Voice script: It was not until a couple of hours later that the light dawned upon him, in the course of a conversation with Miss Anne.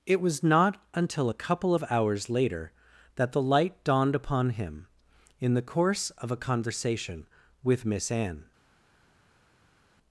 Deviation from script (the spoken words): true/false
false